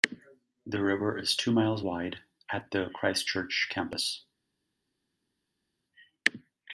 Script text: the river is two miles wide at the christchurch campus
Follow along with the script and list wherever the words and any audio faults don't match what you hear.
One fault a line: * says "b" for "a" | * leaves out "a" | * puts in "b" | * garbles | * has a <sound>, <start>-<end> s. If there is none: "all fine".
all fine